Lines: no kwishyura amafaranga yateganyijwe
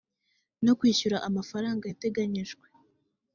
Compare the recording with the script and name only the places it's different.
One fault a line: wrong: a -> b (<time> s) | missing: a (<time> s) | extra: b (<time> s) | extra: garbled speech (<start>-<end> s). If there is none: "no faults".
no faults